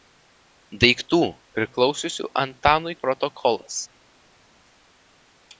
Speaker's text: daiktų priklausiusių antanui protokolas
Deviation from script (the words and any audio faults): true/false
false